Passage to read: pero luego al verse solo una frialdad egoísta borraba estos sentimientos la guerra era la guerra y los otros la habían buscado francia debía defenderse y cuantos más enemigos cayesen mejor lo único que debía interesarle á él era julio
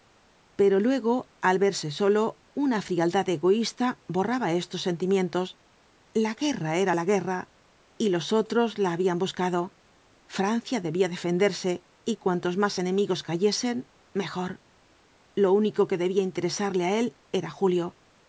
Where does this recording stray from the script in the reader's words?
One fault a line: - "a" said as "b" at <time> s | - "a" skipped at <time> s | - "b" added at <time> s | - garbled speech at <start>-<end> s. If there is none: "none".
none